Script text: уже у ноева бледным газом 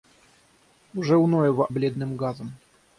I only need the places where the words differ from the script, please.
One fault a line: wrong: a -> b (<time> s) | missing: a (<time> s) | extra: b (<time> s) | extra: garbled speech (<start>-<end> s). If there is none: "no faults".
no faults